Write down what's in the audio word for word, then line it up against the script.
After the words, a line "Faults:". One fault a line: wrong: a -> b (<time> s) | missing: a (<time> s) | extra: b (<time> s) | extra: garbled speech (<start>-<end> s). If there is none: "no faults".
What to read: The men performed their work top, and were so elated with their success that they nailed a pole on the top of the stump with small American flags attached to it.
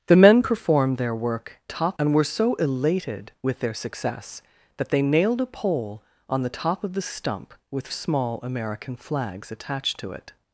The men performed their work top, and were so elated with their success that they nailed a pole on the top of the stump with small American flags attached to it.
Faults:
no faults